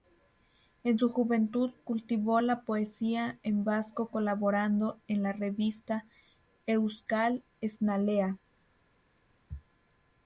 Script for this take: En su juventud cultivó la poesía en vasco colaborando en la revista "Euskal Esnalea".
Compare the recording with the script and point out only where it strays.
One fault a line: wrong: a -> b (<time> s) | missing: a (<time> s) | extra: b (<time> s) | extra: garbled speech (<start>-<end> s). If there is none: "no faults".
no faults